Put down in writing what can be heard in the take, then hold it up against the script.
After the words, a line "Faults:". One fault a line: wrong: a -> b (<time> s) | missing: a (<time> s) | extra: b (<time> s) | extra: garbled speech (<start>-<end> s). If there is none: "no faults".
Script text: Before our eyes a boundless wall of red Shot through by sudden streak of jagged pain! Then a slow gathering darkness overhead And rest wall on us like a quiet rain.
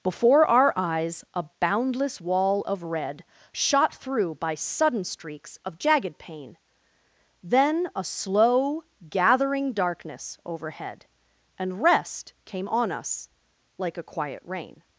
Before our eyes a boundless wall of red Shot through by sudden streaks of jagged pain! Then a slow gathering darkness overhead And rest came on us like a quiet rain.
Faults:
wrong: streak -> streaks (5.0 s)
wrong: wall -> came (12.5 s)